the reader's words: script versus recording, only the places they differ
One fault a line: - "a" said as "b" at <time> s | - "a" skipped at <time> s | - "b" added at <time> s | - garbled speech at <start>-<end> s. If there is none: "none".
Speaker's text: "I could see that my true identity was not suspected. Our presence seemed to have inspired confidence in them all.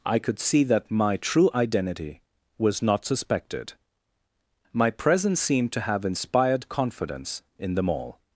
- "Our" said as "My" at 4.7 s